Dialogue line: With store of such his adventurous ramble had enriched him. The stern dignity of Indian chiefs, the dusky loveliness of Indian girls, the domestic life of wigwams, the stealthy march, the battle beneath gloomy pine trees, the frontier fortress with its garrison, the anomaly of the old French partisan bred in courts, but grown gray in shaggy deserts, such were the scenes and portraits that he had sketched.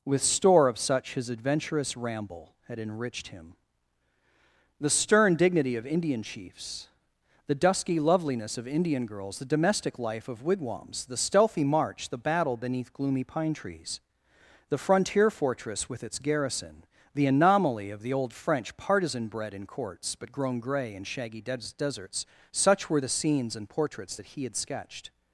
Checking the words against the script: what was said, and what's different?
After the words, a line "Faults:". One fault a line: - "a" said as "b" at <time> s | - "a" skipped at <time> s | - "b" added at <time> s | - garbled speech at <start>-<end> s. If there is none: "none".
With store of such his adventurous ramble had enriched him. The stern dignity of Indian chiefs, the dusky loveliness of Indian girls, the domestic life of wigwams, the stealthy march, the battle beneath gloomy pine trees, the frontier fortress with its garrison, the anomaly of the old French partisan bred in courts, but grown gray in shaggy des deserts, such were the scenes and portraits that he had sketched.
Faults:
- "des" added at 21.4 s